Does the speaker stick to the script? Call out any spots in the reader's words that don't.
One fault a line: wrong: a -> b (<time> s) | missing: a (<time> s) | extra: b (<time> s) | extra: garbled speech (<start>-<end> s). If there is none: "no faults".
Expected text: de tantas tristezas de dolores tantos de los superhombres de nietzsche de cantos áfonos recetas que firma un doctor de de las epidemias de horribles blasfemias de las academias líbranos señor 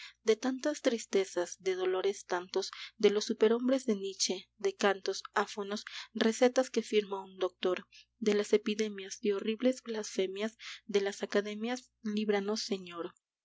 missing: de (8.3 s)